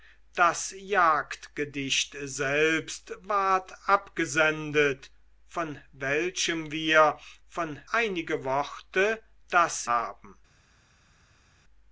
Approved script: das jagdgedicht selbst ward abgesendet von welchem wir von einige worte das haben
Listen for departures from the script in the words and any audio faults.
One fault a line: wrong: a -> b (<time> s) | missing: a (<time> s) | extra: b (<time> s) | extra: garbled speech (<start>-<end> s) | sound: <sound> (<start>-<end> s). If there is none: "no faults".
no faults